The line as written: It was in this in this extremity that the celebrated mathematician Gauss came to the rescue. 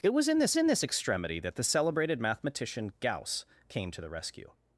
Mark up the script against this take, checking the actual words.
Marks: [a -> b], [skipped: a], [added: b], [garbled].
It was in this in this extremity that the celebrated mathematician Gauss came to the rescue.